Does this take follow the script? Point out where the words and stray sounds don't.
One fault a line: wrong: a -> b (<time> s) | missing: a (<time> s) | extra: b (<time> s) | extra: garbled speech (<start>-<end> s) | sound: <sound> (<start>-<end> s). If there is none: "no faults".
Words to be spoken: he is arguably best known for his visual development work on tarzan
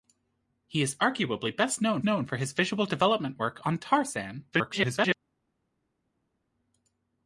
extra: known (2.0 s)
extra: garbled speech (4.5-5.2 s)